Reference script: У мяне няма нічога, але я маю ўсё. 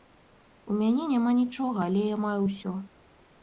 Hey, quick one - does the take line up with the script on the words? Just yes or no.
yes